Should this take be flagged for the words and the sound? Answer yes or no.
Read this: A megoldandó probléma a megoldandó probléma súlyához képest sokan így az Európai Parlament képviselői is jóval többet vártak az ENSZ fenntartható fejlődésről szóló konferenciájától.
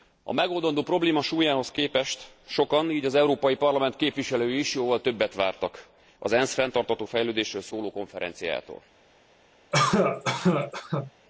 yes